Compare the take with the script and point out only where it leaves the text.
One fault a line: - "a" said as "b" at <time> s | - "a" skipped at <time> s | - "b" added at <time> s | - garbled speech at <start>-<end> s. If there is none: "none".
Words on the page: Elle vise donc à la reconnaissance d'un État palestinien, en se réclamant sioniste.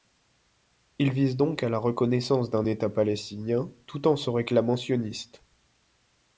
- "Elle" said as "Il" at 1.0 s
- "tout" added at 3.9 s